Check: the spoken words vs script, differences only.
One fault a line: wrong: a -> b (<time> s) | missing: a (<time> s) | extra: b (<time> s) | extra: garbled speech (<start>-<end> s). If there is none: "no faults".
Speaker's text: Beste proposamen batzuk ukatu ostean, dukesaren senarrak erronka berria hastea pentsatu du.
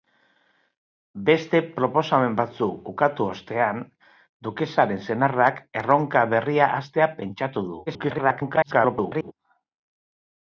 extra: garbled speech (7.9-9.3 s)